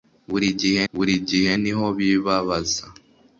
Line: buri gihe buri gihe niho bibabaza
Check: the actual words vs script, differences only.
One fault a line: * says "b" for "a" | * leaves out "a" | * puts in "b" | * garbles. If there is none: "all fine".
all fine